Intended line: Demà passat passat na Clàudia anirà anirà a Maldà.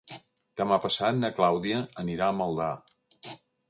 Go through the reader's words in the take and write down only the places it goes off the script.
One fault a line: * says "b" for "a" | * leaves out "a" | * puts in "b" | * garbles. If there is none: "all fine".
* leaves out "passat"
* leaves out "anirà"